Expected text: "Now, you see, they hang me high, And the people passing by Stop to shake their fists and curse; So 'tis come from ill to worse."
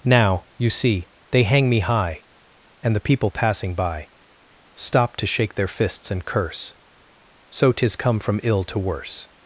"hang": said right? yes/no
yes